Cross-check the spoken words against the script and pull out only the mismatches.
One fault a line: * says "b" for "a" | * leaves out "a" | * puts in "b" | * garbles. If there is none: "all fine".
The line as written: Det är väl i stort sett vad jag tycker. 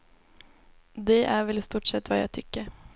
all fine